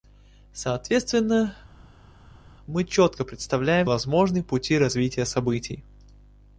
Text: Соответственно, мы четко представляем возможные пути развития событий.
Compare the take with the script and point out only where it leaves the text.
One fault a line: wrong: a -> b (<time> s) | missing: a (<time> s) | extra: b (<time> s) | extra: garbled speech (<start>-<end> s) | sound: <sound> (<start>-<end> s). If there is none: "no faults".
no faults